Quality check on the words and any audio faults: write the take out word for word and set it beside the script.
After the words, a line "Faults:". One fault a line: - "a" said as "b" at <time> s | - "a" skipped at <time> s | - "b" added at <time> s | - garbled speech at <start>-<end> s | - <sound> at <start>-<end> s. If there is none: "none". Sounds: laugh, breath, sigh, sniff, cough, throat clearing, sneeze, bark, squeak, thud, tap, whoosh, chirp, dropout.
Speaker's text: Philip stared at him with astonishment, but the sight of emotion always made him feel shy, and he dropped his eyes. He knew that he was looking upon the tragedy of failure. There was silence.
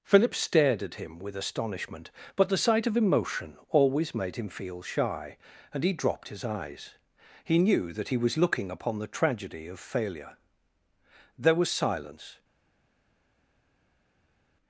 Philip stared at him with astonishment, but the sight of emotion always made him feel shy, and he dropped his eyes. He knew that he was looking upon the tragedy of failure. There was silence.
Faults:
none